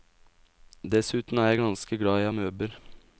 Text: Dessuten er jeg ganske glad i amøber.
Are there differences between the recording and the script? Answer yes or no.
no